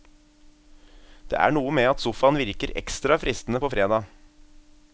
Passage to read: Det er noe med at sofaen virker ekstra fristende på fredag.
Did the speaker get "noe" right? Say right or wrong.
right